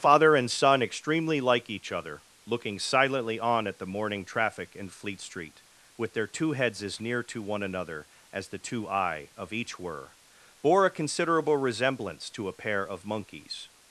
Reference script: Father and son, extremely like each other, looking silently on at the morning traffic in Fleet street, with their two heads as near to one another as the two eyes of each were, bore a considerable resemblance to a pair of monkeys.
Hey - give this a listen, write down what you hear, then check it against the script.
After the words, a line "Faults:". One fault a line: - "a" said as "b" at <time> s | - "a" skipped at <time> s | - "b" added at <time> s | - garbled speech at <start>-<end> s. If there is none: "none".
Father and son, extremely like each other, looking silently on at the morning traffic in Fleet street, with their two heads as near to one another as the two eye of each were, bore a considerable resemblance to a pair of monkeys.
Faults:
- "eyes" said as "eye" at 8.9 s